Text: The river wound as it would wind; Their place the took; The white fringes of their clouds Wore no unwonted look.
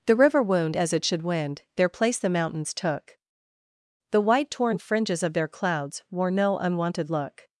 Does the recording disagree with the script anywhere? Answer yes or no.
yes